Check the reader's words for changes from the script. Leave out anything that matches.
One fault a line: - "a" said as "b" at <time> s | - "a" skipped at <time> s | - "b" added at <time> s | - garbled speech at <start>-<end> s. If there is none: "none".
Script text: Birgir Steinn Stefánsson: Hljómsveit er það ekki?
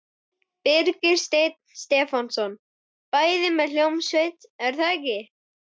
- "Bæði með" added at 3.2 s